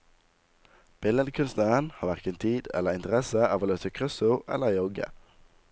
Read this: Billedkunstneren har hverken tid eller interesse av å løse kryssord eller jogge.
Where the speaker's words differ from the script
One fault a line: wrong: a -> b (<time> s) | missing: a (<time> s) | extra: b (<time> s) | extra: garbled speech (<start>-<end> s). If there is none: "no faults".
no faults